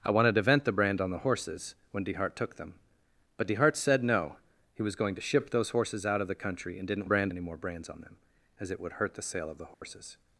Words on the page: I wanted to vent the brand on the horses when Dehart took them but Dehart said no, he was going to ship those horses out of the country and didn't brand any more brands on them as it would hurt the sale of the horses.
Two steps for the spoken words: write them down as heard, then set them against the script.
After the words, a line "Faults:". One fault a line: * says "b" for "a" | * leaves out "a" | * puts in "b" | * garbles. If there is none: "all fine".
I wanted to vent the brand on the horses when Dehart took them but Dehart said no, he was going to ship those horses out of the country and didn't brand any more brands on them as it would hurt the sale of the horses.
Faults:
all fine